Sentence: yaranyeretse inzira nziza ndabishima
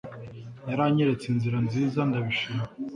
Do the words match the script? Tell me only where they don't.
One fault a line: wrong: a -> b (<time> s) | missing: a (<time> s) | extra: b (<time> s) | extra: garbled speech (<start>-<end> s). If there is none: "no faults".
no faults